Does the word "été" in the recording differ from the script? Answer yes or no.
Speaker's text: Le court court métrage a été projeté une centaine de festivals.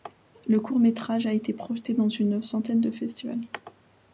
no